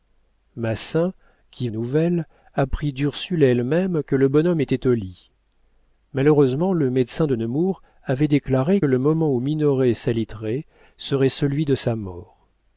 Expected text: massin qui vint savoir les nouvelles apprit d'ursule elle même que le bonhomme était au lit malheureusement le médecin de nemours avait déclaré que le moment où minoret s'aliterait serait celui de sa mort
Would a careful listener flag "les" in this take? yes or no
yes